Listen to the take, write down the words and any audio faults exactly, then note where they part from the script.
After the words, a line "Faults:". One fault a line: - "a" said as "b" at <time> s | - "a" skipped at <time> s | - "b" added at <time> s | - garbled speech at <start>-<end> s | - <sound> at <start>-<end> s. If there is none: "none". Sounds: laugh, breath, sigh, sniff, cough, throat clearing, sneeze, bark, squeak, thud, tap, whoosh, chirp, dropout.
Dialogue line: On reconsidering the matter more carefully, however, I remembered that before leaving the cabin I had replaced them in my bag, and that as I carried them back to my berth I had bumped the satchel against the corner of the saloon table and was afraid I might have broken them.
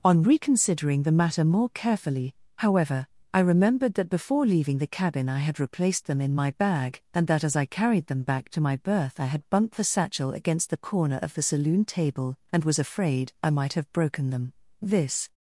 On reconsidering the matter more carefully, however, I remembered that before leaving the cabin I had replaced them in my bag, and that as I carried them back to my berth I had bumped the satchel against the corner of the saloon table and was afraid I might have broken them. This
Faults:
- "This" added at 14.8 s